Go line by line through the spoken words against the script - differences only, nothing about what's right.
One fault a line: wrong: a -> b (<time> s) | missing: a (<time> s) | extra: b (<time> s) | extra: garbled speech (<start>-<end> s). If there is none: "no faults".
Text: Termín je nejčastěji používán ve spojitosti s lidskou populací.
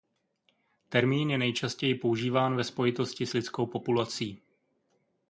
no faults